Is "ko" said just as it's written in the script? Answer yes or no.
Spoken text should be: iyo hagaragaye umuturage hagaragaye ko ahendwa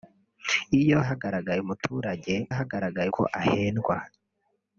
yes